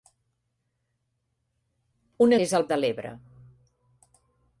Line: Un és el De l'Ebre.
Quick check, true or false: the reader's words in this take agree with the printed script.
true